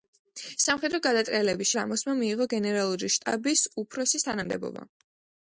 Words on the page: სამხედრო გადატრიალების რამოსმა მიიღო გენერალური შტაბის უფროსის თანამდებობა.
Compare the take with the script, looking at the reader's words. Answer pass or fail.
pass